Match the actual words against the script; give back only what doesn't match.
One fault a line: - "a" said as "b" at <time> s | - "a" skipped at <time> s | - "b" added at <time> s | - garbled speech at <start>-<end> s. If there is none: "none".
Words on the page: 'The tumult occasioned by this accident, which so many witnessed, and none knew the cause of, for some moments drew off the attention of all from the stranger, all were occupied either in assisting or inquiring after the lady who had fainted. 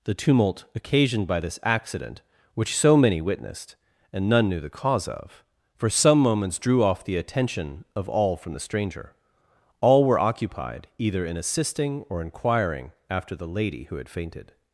none